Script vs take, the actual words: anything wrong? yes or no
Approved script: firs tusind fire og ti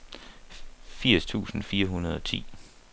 yes